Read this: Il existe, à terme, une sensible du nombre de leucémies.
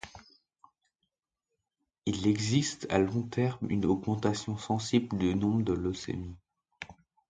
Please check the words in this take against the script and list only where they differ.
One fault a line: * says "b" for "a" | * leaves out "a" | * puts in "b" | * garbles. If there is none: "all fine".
* puts in "long"
* puts in "augmentation"